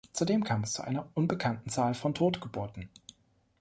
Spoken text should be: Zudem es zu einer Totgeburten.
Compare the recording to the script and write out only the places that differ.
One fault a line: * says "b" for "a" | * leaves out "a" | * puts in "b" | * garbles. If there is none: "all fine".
* puts in "kam"
* puts in "unbekannten Zahl von"